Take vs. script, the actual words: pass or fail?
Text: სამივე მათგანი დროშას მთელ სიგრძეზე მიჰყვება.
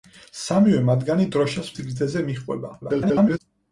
fail